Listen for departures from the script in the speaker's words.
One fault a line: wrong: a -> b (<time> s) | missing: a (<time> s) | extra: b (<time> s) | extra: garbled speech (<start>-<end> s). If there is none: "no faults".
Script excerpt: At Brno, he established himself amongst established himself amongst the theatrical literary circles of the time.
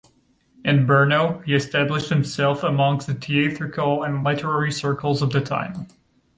wrong: At -> In (0.7 s)
missing: established himself amongst (3.0 s)
extra: and (4.0 s)